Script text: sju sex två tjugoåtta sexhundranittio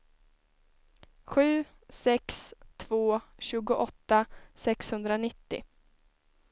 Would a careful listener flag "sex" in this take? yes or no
no